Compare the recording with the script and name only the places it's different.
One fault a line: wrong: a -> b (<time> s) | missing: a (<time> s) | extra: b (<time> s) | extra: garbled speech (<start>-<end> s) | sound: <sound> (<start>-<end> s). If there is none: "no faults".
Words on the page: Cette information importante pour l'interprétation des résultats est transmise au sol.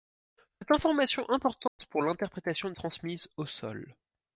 sound: dropout (1.7-1.8 s)
missing: des résultats est (2.7 s)